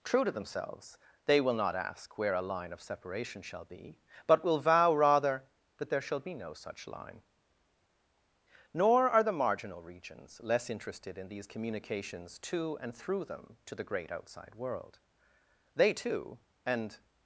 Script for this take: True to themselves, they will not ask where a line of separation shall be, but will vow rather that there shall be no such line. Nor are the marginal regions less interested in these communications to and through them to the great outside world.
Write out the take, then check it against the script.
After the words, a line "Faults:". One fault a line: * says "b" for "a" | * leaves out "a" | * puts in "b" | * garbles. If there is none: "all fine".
True to themselves, they will not ask where a line of separation shall be, but will vow rather that there shall be no such line. Nor are the marginal regions less interested in these communications to and through them to the great outside world. They, too, and
Faults:
* puts in "They too and"